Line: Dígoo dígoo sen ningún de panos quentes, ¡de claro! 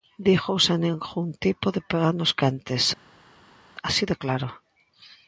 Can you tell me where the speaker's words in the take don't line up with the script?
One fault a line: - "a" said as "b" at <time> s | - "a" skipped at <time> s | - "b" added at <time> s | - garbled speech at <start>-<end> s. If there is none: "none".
- "dígoo" skipped at 0.6 s
- "tipo" added at 1.4 s
- "así" added at 3.9 s